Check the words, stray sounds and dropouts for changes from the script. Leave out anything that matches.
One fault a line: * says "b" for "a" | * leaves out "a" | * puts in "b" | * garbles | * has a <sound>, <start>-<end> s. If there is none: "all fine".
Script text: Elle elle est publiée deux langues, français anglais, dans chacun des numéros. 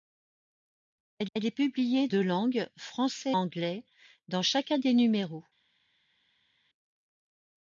all fine